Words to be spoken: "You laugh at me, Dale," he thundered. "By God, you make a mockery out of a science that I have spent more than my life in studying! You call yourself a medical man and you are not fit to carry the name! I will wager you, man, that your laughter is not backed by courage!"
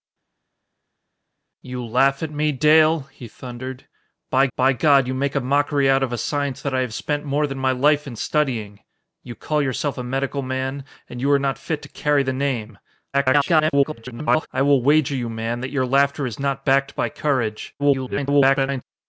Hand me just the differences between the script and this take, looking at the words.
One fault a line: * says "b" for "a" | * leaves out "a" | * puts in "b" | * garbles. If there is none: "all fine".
* puts in "by"
* garbles
* garbles